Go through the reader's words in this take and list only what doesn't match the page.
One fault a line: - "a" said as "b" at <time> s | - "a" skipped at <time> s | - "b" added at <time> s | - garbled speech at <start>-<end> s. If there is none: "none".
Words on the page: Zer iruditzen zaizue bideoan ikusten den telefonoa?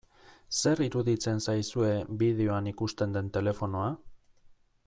none